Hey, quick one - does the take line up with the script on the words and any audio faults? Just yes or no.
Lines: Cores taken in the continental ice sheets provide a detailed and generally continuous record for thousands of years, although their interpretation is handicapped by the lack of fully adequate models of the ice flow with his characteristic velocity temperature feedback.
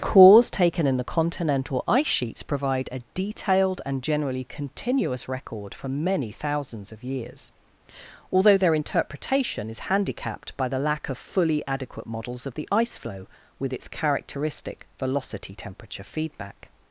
no